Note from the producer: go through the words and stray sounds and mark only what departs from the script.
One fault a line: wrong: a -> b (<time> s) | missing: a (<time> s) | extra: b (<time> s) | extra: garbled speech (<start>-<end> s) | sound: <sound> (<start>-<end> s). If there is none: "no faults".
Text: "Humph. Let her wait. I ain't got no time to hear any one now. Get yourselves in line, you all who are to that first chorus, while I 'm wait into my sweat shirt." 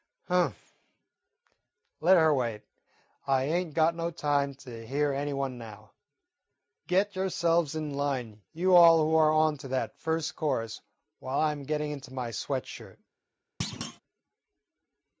extra: on (9.3 s)
wrong: wait -> getting (11.7 s)
sound: thud (13.6-14.0 s)